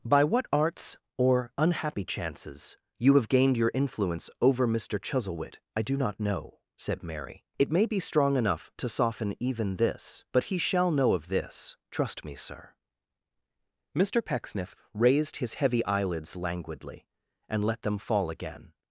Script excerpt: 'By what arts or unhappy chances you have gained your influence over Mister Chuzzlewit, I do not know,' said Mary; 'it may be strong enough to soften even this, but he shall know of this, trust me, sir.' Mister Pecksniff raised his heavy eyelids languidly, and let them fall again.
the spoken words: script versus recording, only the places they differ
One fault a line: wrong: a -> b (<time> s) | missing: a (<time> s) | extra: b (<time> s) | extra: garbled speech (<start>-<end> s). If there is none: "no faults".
no faults